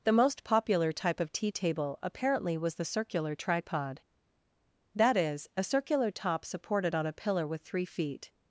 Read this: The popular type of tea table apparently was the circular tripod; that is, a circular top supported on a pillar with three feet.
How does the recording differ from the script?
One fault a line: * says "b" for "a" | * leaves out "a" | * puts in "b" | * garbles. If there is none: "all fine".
* puts in "most"